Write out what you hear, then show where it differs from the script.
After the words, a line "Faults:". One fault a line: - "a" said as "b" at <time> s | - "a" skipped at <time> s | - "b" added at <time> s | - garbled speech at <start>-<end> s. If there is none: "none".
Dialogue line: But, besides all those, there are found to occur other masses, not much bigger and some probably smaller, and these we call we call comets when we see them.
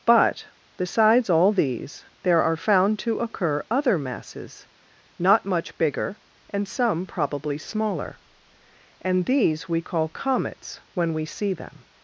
But, besides all these, there are found to occur other masses, not much bigger and some probably smaller, and these we call comets when we see them.
Faults:
- "those" said as "these" at 1.5 s
- "we call" skipped at 10.1 s